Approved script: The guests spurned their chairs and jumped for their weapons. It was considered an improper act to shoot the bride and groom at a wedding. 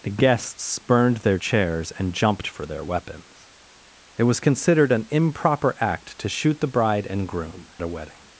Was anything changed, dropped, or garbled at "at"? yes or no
yes